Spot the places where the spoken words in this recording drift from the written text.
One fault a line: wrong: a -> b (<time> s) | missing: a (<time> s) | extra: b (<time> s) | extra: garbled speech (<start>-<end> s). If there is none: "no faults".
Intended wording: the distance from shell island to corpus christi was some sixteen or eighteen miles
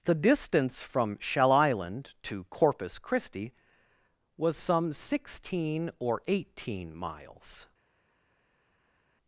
no faults